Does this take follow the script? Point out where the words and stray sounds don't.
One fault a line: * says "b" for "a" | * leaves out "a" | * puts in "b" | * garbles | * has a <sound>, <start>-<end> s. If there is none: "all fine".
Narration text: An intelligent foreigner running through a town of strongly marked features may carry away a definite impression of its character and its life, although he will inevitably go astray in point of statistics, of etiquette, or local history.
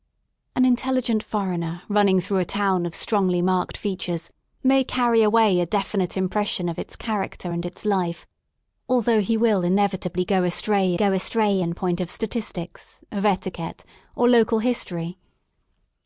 * puts in "go astray"